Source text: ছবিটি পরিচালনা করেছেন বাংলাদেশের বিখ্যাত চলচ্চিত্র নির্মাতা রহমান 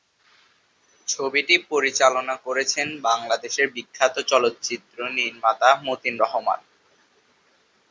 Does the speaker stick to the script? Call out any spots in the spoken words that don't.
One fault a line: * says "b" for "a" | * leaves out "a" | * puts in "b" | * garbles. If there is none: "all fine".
* puts in "মতিন"